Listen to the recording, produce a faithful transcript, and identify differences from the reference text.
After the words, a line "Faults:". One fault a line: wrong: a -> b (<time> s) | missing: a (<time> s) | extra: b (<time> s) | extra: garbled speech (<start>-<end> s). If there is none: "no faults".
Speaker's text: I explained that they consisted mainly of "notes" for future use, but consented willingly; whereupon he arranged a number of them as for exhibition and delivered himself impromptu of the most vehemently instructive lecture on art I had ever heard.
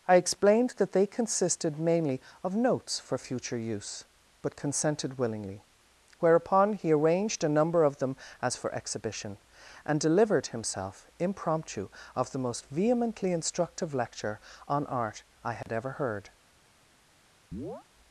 I explained that they consisted mainly of "notes" for future use, but consented willingly; whereupon he arranged a number of them as for exhibition and delivered himself impromptu of the most vehemently instructive lecture on art I had ever heard.
Faults:
no faults